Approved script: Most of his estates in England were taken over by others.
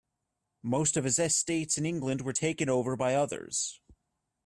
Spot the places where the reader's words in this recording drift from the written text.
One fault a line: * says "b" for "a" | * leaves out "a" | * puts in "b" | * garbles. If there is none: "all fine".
all fine